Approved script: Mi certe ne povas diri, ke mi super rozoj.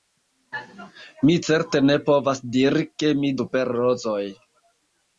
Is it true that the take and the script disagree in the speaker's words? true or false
false